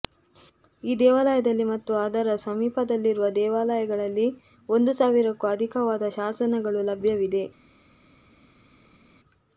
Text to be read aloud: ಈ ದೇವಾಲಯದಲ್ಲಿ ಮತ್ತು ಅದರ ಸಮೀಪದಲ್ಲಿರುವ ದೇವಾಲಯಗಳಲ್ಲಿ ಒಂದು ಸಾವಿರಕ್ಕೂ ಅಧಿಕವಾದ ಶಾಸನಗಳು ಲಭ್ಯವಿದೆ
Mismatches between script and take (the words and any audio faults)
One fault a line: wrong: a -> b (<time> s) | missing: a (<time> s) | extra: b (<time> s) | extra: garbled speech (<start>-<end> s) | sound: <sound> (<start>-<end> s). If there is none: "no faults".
no faults